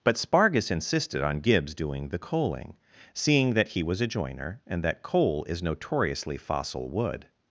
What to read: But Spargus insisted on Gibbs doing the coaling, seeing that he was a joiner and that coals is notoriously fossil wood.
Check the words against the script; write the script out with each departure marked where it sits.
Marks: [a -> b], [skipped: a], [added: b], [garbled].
But Spargus insisted on Gibbs doing the coaling, seeing that he was a joiner and that [coals -> coal] is notoriously fossil wood.